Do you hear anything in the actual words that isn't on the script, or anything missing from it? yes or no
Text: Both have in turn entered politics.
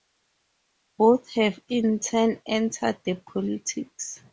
yes